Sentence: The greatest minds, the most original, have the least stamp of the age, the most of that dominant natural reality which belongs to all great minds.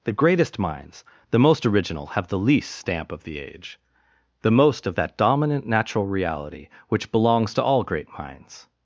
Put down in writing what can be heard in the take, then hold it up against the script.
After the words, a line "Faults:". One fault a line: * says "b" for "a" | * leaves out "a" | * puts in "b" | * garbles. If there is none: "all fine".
The greatest minds, the most original, have the least stamp of the age, the most of that dominant natural reality which belongs to all great minds.
Faults:
all fine